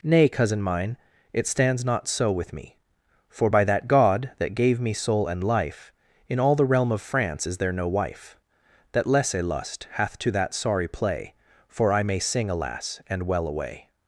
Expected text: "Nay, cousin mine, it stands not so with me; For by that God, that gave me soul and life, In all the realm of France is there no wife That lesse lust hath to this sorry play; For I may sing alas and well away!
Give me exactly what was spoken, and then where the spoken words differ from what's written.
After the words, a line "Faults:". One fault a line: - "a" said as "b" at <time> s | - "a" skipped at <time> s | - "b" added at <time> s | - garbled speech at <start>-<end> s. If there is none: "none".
"Nay, cousin mine, it stands not so with me; For by that God, that gave me soul and life, In all the realm of France is there no wife That lesse lust hath to that sorry play; For I may sing alas and well away!
Faults:
- "this" said as "that" at 10.3 s